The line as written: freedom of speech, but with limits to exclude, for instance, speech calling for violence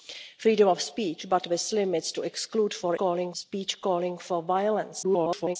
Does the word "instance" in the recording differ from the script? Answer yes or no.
yes